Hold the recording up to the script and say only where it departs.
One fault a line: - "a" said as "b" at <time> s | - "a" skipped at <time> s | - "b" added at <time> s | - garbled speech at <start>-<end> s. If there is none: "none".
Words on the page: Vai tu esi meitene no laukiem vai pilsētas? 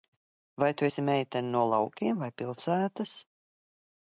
none